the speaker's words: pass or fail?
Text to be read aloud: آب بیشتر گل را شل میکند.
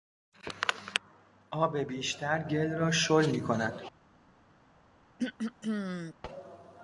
pass